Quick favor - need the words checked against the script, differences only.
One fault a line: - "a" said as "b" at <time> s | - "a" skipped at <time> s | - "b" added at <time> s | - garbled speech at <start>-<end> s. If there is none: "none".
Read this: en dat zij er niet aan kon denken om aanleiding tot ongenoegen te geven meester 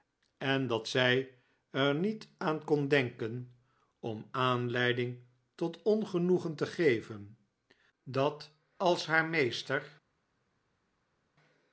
- "dat als haar" added at 8.0 s